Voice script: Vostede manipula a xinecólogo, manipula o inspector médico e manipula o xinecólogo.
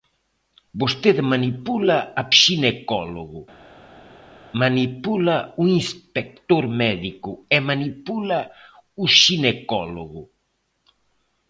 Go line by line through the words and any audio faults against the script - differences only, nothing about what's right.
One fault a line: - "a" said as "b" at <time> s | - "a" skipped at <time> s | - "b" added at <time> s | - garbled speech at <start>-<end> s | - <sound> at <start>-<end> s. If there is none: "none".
none